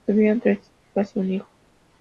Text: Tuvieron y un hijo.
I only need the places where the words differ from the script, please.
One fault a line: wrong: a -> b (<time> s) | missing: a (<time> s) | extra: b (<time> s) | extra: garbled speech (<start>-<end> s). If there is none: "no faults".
extra: tres hijas (0.4 s)